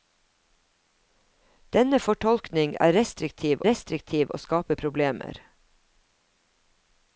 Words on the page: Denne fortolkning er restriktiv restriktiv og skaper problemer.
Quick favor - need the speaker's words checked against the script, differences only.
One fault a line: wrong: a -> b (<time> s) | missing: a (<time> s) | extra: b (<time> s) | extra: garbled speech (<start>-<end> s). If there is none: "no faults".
no faults